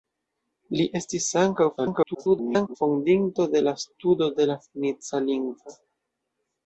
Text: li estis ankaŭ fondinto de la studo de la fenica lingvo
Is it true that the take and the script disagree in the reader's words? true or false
true